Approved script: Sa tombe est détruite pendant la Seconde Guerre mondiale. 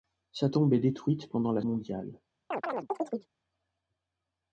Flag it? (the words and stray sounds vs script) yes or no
yes